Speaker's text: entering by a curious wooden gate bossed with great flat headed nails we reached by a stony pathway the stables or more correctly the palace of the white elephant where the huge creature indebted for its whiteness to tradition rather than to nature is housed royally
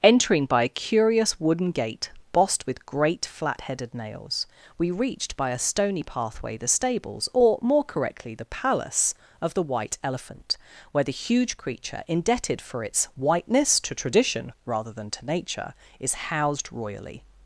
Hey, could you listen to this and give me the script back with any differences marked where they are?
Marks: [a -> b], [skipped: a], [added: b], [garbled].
entering by a curious wooden gate bossed with great flat headed nails we reached by a stony pathway the stables or more correctly the palace of the white elephant where the huge creature indebted for its whiteness to tradition rather than to nature is housed royally